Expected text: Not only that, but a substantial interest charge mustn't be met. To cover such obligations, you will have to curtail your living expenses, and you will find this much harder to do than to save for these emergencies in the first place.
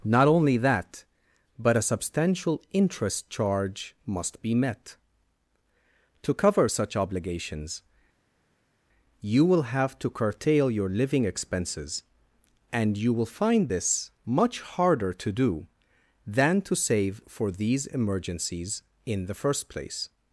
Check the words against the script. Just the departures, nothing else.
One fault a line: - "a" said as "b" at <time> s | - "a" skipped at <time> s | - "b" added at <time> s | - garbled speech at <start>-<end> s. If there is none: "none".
- "mustn't" said as "must" at 4.0 s